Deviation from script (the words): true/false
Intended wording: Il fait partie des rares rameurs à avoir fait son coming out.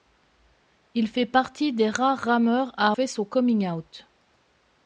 true